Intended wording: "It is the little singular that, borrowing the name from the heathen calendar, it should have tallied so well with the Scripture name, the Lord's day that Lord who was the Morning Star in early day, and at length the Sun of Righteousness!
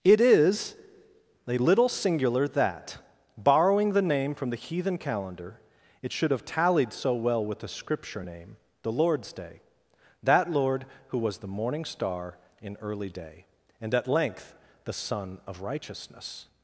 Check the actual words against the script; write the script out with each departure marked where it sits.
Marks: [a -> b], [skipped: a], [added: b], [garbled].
"It is [the -> a] little singular that, borrowing the name from the heathen calendar, it should have tallied so well with the Scripture name, the Lord's day that Lord who was the Morning Star in early day, and at length the Sun of Righteousness!